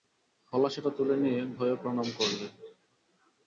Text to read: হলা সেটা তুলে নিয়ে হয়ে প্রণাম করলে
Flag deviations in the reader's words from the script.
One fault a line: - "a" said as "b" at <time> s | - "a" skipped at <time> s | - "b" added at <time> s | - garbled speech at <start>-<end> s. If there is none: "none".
none